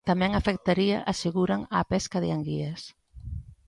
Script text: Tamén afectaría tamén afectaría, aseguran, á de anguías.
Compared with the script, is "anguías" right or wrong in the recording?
right